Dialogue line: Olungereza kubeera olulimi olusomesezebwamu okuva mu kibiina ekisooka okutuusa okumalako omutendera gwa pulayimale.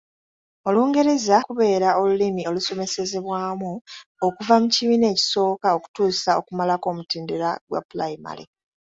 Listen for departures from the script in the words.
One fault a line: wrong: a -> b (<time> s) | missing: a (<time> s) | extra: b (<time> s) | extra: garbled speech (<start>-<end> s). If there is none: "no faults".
no faults